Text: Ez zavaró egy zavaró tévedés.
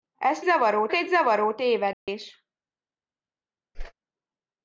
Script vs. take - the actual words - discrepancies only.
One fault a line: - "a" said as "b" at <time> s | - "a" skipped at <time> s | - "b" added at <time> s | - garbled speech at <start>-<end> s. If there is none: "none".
none